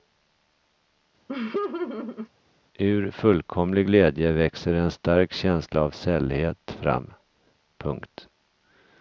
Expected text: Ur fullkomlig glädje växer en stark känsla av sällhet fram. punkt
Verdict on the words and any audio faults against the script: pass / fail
fail